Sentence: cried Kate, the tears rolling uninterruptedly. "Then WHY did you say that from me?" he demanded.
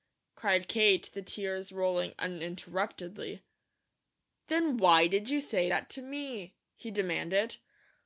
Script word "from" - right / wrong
wrong